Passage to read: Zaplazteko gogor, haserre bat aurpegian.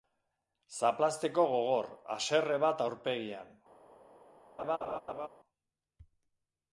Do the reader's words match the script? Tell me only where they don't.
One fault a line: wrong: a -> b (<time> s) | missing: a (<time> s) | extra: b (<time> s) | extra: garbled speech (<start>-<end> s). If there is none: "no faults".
no faults